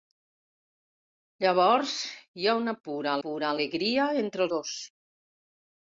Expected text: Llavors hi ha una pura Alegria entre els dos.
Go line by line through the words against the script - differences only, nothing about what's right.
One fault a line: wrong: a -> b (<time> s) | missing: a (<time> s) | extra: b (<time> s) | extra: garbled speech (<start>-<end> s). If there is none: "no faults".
extra: pura (3.3 s)
missing: els (4.5 s)